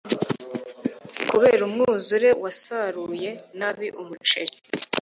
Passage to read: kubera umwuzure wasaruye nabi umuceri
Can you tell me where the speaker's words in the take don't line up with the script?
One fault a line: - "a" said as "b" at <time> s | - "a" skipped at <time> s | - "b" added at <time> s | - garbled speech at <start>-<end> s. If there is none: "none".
none